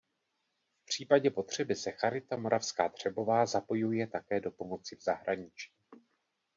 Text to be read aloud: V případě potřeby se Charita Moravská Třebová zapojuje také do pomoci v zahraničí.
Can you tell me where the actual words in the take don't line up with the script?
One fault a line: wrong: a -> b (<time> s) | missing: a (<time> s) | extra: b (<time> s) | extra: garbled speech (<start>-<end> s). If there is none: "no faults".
no faults